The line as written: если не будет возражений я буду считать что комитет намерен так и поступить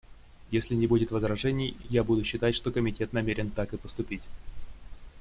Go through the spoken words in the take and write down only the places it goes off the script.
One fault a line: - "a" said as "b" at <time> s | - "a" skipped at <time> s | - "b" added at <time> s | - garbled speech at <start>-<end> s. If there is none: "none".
none